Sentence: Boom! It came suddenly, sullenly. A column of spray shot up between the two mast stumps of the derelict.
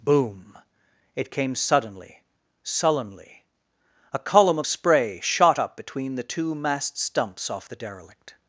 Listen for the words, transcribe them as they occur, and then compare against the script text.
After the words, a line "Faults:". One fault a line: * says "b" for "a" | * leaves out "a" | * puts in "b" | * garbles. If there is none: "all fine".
Boom! It came suddenly, sullenly. A column of spray shot up between the two mast stumps off the derelict.
Faults:
* says "off" for "of"